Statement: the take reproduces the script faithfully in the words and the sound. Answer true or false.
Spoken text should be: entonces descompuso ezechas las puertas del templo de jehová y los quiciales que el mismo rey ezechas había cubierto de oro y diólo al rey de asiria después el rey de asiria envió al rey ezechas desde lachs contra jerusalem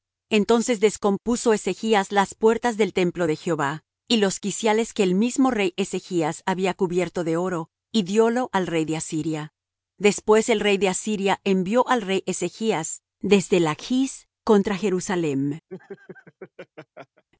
false